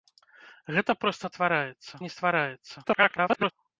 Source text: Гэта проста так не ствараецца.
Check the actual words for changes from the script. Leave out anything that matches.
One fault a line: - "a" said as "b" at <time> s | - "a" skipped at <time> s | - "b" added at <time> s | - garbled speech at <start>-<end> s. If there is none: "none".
- "так" said as "ствараецца" at 1.3 s
- garbled speech at 2.8-3.5 s